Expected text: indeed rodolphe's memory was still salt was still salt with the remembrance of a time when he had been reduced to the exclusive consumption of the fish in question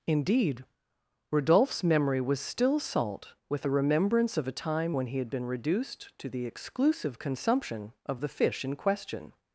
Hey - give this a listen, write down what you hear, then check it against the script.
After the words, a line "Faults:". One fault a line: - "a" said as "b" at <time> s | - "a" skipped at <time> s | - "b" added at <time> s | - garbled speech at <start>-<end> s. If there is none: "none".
indeed rodolphe's memory was still salt with the remembrance of a time when he had been reduced to the exclusive consumption of the fish in question
Faults:
- "was still salt" skipped at 3.4 s